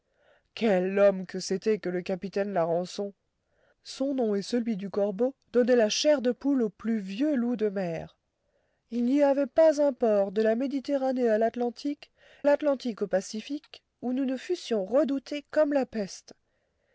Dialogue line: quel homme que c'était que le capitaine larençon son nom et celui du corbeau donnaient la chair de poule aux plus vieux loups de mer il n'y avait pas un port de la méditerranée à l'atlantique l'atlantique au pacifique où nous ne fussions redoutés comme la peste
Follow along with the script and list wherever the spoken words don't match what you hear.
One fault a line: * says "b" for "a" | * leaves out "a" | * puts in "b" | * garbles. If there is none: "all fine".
all fine